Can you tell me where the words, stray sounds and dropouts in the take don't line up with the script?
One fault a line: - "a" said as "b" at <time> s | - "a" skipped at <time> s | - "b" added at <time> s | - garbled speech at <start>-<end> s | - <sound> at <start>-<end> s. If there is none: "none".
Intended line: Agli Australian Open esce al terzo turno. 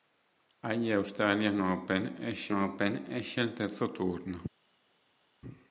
- "Open esce" added at 2.5 s